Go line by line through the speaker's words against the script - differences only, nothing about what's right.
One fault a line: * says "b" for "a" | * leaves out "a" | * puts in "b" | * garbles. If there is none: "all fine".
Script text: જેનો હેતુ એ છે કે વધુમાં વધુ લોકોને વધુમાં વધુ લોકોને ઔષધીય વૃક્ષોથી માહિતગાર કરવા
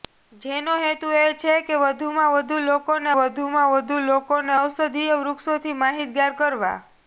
all fine